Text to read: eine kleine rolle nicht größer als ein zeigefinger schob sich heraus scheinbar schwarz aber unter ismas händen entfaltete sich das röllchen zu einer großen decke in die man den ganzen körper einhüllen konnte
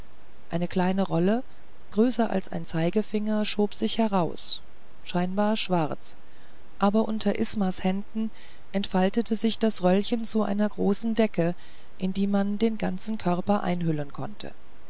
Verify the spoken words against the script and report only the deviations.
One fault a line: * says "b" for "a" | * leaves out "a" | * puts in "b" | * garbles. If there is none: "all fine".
* leaves out "nicht"